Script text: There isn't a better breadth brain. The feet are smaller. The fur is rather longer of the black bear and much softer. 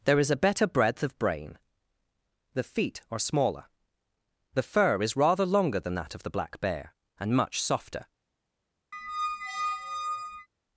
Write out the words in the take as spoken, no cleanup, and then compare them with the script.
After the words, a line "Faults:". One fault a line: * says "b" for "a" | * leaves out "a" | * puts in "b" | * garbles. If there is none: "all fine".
There is a better breadth of brain. The feet are smaller. The fur is rather longer than that of the black bear and much softer.
Faults:
* says "is" for "isn't"
* puts in "of"
* puts in "than that"